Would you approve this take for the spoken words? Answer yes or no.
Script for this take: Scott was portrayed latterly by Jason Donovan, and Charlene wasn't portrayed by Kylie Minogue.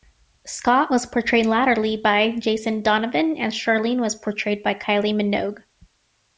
no